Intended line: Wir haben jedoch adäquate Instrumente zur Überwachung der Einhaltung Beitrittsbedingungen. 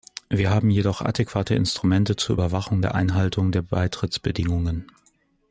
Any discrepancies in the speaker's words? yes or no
yes